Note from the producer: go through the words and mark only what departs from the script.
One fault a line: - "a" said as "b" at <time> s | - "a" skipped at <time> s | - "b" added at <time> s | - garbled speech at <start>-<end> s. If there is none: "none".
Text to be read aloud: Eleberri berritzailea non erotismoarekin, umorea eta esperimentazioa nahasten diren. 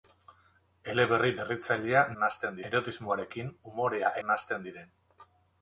- "non" said as "nahasten" at 2.2 s
- "eta esperimentazioa" skipped at 4.1 s